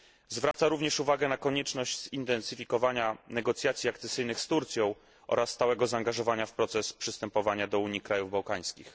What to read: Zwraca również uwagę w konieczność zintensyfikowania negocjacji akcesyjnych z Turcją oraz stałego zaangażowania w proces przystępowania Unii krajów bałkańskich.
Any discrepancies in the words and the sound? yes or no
yes